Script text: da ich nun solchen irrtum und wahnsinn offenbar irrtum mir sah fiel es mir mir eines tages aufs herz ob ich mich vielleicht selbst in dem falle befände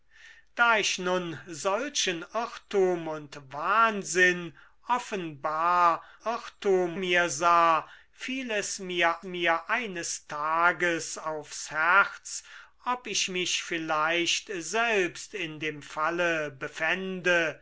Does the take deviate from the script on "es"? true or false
false